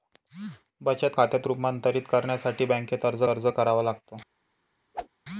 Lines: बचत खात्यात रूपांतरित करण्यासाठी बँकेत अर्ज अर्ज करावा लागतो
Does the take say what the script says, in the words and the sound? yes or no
no